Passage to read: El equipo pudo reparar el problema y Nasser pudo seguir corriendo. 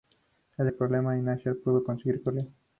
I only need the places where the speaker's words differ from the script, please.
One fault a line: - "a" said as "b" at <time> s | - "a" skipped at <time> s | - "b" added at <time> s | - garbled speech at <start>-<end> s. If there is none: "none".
- "equipo pudo reparar" skipped at 0.7 s